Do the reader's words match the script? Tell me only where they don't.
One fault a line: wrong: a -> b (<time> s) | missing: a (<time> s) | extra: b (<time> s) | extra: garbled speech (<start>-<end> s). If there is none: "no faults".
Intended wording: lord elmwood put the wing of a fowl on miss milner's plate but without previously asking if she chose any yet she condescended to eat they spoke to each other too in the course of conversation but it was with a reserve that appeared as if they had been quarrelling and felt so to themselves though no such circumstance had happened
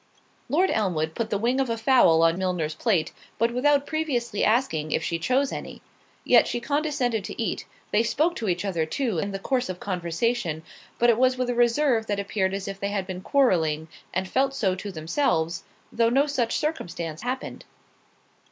missing: miss (2.4 s)
missing: had (17.2 s)